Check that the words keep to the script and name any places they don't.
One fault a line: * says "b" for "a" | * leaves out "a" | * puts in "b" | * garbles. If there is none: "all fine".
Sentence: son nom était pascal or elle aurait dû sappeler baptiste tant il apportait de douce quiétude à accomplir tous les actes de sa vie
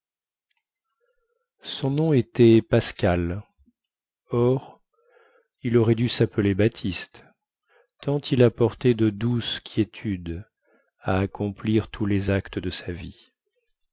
* says "il" for "elle"